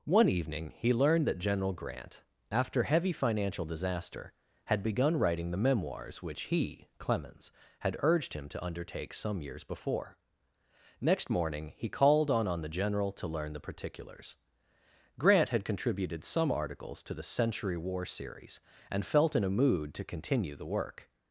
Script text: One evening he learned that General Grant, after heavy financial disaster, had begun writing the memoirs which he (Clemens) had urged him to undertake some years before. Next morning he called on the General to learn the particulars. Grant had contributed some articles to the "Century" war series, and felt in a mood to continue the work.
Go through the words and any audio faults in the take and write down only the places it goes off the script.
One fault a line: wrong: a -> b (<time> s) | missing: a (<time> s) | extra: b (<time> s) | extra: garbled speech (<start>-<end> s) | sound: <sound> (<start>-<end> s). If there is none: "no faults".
extra: on (12.5 s)